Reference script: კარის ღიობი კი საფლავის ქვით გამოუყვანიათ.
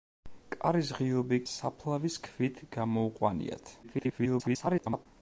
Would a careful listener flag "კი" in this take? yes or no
yes